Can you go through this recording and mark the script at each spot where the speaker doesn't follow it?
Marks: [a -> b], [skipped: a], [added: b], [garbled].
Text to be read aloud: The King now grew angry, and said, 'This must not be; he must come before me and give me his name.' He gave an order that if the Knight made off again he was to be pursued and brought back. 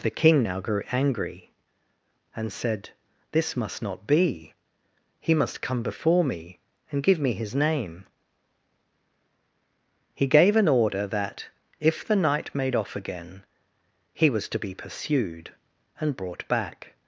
The King now grew angry, and said, 'This must not be; he must come before me and give me his name.' He gave an order that if the Knight made off again he was to be pursued and brought back.